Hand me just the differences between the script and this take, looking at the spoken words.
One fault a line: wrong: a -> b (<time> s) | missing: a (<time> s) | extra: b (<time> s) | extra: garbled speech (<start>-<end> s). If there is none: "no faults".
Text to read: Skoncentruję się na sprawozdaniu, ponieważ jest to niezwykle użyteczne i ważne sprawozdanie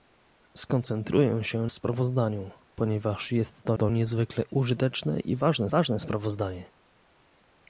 missing: na (1.7 s)
extra: to (3.7 s)
extra: ważne (5.7 s)